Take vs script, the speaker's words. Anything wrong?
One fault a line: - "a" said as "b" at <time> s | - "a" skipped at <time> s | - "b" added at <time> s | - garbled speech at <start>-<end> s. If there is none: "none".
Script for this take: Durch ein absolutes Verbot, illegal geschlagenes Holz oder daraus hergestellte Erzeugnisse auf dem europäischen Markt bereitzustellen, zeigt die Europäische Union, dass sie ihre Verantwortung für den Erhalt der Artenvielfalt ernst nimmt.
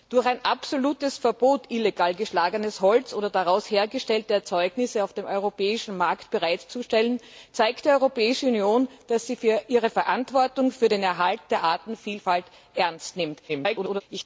- garbled speech at 13.5-14.0 s